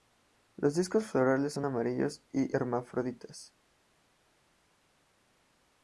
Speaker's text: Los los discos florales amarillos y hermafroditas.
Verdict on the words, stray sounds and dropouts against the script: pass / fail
fail